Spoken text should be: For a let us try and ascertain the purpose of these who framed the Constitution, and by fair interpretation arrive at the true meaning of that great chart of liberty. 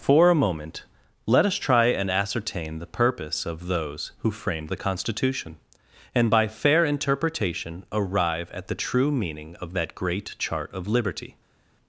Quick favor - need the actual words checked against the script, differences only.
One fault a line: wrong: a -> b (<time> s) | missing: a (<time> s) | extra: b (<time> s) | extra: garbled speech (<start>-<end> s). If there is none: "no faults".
extra: moment (0.3 s)
wrong: these -> those (3.7 s)